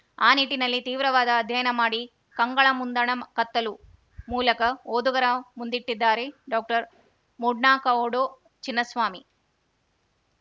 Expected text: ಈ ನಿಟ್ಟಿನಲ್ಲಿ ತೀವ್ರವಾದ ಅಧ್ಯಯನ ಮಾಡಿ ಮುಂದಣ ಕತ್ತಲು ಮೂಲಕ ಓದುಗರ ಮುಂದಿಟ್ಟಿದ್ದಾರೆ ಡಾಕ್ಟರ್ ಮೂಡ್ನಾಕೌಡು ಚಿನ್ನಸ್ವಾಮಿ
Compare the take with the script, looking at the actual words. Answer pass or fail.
fail